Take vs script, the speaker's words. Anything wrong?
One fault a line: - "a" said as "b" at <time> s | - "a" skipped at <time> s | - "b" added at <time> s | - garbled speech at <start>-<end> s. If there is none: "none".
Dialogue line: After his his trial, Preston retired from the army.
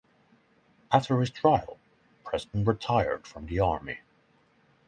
- "his" skipped at 1.3 s